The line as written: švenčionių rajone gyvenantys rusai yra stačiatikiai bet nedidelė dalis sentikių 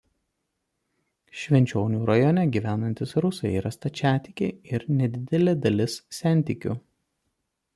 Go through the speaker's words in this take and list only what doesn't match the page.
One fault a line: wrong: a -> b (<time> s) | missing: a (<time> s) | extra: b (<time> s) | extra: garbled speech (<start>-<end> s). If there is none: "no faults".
wrong: bet -> ir (4.8 s)